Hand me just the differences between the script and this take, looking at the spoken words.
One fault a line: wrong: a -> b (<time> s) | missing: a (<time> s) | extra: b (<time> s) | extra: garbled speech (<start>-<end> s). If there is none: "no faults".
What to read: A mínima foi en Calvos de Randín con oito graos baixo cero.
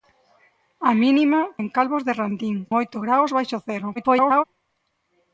missing: foi (1.4 s)
missing: con (2.6 s)
extra: garbled speech (4.0-4.4 s)